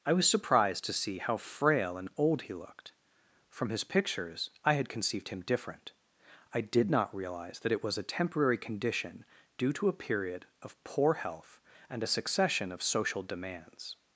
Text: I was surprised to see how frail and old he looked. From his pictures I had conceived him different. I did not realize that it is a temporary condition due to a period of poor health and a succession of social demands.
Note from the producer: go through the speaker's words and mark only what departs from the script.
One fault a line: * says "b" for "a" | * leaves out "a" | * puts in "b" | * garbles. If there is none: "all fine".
* says "was" for "is"